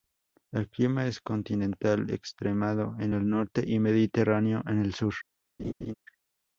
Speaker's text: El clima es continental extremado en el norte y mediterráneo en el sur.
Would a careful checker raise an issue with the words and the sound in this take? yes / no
yes